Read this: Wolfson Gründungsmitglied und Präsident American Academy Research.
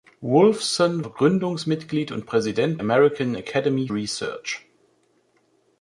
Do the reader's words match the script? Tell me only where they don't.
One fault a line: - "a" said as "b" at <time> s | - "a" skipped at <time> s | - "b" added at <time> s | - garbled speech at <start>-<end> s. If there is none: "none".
none